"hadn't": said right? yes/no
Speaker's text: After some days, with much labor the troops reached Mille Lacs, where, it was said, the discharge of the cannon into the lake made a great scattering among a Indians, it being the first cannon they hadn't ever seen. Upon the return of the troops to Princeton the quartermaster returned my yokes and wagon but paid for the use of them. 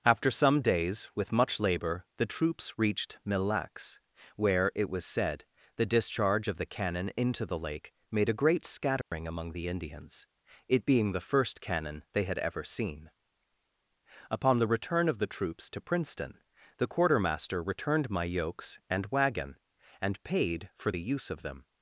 no